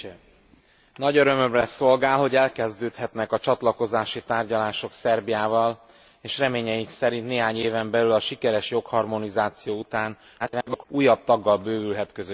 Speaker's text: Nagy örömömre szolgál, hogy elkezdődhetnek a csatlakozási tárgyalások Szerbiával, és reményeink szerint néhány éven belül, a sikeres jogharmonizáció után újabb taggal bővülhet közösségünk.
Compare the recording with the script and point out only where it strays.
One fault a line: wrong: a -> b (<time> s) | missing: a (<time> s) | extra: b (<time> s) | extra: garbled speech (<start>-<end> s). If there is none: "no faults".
extra: garbled speech (10.4-10.8 s)